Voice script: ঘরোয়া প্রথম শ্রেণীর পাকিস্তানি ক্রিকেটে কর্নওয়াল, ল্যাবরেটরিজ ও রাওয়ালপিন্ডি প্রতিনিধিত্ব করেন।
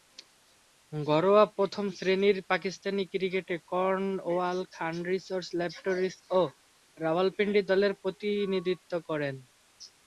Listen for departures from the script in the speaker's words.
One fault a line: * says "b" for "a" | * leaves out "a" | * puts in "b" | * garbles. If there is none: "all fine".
* puts in "খান রিসার্চ"
* puts in "দলের"